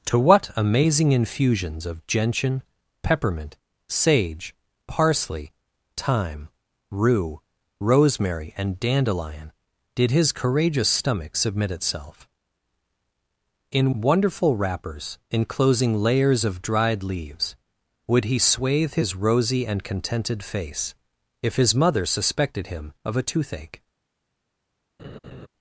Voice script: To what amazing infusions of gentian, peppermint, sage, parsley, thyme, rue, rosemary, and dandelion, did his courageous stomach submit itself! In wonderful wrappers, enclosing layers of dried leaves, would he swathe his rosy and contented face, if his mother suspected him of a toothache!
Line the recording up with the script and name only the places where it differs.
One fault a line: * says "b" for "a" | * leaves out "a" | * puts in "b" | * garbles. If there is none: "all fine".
all fine